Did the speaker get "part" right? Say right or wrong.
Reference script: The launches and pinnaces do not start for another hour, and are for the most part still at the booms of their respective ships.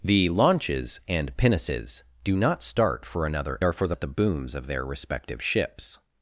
wrong